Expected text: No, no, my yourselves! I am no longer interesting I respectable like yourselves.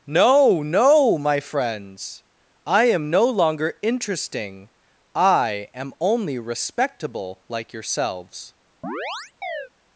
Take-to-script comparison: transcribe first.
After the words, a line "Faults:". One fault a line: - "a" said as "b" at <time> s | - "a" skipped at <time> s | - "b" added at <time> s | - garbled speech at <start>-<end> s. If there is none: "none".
No, no, my friends! I am no longer interesting I am only respectable like yourselves.
Faults:
- "yourselves" said as "friends" at 1.4 s
- "am only" added at 5.7 s